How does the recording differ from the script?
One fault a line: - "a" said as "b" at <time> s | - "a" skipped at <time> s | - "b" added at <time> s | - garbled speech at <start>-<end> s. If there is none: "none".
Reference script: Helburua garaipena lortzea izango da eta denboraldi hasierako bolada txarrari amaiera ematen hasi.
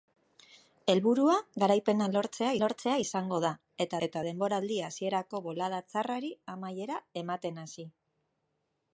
- "lortzea" added at 2.6 s
- "eta" added at 4.1 s